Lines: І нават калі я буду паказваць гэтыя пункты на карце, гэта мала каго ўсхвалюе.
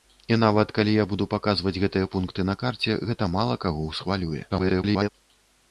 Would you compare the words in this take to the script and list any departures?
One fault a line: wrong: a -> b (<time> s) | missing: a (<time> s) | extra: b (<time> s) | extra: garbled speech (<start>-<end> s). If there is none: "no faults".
extra: garbled speech (4.5-5.1 s)